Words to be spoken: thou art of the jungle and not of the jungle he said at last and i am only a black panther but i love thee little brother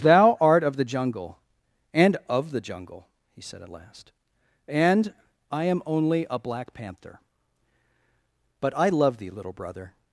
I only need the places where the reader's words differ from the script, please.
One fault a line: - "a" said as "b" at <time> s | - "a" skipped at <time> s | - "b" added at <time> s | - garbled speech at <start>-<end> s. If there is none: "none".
- "not" skipped at 2.2 s